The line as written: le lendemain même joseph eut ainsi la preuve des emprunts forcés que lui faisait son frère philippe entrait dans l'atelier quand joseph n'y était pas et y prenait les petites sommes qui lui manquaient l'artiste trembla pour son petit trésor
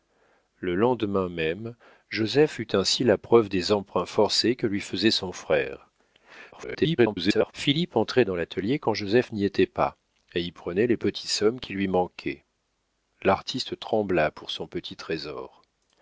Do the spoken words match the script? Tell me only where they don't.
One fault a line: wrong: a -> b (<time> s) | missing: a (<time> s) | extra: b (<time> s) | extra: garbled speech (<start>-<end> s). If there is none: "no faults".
extra: garbled speech (6.5-7.5 s)